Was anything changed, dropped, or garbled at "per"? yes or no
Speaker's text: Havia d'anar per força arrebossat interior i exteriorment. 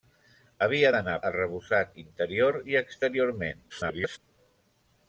yes